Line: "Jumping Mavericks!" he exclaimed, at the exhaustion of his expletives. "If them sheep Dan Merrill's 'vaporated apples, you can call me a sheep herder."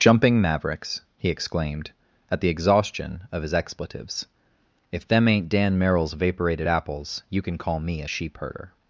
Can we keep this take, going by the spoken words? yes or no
no